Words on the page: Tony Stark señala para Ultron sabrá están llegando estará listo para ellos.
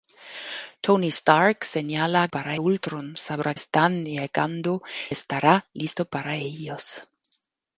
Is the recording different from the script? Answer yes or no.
no